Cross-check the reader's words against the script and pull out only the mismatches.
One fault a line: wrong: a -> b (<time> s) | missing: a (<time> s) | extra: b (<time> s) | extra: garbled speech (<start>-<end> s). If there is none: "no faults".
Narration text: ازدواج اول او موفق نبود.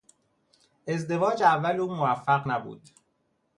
no faults